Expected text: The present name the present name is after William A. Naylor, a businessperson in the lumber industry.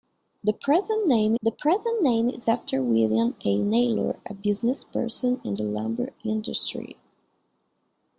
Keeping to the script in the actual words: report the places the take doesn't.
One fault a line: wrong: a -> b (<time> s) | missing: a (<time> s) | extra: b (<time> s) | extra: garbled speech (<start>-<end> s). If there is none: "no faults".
no faults